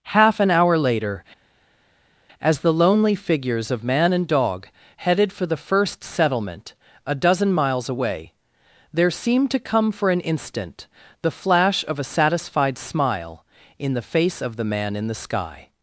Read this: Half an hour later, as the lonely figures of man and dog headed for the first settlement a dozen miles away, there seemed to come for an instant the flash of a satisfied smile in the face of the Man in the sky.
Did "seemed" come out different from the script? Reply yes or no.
no